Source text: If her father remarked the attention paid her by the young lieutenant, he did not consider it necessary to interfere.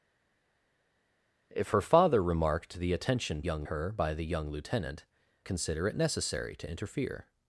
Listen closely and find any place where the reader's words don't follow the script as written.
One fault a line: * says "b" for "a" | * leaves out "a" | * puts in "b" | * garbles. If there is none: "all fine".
* says "young" for "paid"
* leaves out "he did not"